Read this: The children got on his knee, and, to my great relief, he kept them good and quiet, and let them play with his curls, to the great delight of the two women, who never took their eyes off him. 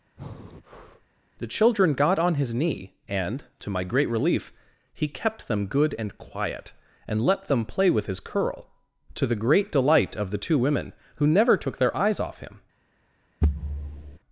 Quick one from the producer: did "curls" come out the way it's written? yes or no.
no